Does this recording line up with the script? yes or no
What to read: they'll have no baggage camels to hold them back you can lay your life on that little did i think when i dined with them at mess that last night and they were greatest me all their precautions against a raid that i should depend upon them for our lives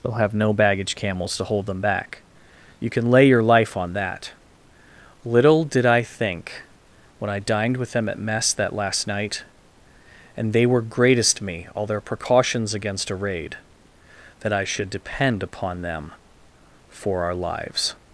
yes